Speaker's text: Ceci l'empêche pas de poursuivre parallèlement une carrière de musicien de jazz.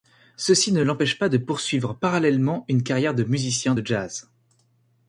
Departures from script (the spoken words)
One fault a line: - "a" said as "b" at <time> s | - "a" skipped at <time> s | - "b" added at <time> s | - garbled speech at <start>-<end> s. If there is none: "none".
- "ne" added at 0.7 s